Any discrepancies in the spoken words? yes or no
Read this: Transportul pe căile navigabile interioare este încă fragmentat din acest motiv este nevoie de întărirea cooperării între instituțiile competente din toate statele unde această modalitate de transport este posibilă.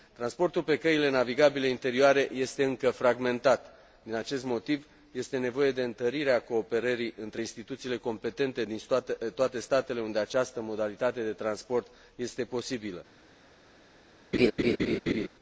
no